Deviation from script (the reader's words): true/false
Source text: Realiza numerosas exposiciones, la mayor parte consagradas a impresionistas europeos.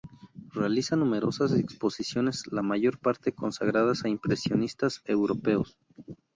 false